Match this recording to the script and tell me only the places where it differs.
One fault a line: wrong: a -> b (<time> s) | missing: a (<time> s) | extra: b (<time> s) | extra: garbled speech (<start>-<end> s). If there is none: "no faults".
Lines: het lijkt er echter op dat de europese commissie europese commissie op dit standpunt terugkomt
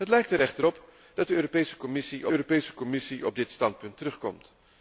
no faults